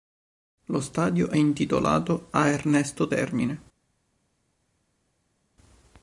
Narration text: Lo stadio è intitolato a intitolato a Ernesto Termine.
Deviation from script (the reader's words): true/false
true